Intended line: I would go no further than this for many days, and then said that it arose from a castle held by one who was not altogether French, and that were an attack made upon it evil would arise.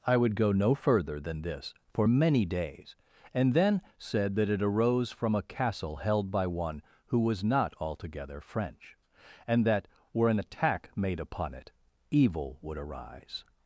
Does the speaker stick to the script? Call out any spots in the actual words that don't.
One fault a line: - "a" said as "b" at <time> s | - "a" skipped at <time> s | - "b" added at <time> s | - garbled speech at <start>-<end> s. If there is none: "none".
none